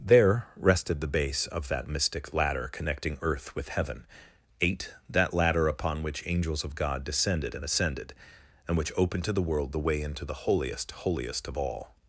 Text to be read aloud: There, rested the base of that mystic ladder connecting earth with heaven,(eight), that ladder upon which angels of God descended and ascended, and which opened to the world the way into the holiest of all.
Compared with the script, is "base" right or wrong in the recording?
right